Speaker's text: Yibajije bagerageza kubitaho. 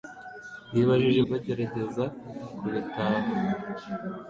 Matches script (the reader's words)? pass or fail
pass